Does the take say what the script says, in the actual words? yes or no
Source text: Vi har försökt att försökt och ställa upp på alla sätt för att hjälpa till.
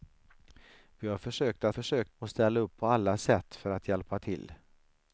yes